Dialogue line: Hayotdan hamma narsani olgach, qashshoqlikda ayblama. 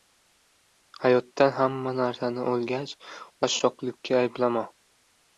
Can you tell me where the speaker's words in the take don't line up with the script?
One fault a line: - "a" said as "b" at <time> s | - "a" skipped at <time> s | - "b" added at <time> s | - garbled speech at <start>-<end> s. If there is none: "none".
none